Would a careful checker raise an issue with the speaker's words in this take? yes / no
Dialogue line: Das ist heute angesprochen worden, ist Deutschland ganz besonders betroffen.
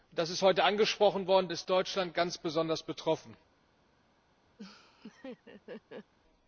no